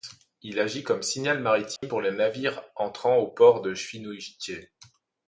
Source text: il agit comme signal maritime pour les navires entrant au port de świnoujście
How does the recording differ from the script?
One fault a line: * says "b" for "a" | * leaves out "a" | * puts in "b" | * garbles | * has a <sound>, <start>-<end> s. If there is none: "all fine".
* has a dropout, 1.8-1.8 s